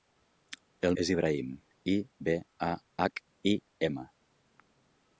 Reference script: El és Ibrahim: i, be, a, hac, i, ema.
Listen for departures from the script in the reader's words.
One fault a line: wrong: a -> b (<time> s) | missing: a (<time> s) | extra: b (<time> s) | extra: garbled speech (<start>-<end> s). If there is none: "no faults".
no faults